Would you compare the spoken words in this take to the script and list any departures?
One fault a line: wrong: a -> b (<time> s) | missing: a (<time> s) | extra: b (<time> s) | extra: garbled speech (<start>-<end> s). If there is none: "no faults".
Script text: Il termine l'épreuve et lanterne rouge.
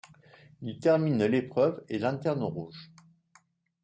no faults